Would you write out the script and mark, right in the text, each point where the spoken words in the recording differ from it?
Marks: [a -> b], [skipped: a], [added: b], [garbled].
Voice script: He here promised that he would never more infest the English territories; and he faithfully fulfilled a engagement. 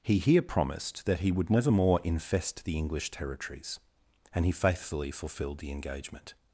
He here promised that he would never more infest the English territories; and he faithfully fulfilled [a -> the] engagement.